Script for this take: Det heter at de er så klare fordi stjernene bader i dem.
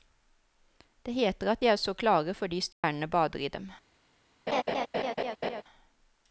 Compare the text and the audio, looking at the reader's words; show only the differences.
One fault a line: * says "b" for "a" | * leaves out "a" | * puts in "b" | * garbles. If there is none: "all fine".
all fine